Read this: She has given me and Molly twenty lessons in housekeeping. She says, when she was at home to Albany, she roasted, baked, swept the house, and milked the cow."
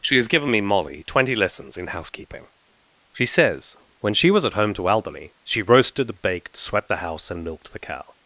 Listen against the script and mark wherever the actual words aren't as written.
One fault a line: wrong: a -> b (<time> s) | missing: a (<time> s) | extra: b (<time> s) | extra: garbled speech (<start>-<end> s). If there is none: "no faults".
missing: and (0.6 s)